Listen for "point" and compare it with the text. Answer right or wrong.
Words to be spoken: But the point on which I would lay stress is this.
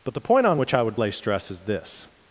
right